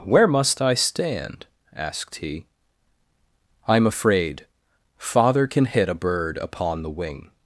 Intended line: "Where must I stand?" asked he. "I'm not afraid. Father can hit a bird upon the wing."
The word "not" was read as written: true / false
false